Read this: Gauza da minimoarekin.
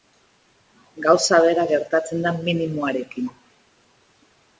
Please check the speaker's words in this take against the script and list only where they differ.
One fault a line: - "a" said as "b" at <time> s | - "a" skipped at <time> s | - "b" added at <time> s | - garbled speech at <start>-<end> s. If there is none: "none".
- "bera gertatzen" added at 1.4 s